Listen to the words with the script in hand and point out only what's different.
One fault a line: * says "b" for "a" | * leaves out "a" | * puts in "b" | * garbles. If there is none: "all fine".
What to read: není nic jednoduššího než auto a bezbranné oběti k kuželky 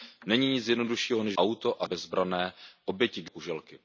all fine